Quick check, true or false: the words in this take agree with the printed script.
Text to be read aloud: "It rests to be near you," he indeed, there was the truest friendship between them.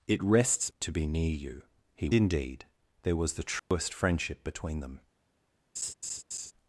true